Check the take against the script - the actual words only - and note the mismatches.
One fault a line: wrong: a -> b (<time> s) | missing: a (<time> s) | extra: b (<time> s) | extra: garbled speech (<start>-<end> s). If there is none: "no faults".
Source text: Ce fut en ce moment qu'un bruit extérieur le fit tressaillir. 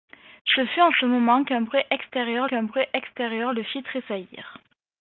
extra: qu'un bruit extérieur (2.4 s)